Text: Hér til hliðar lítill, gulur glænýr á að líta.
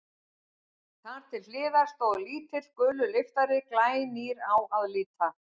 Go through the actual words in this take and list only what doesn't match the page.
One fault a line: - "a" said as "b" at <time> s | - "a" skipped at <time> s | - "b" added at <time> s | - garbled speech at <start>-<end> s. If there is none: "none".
- "Hér" said as "Þar" at 1.1 s
- "stóð" added at 1.9 s
- "lyftari" added at 3.2 s